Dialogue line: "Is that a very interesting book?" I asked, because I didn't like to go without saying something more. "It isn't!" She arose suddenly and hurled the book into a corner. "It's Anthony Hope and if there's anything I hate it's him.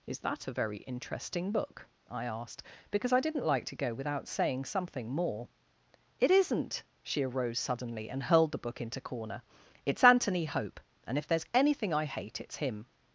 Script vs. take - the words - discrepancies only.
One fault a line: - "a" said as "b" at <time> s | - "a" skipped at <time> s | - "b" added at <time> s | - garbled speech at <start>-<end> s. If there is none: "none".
- "a" skipped at 9.0 s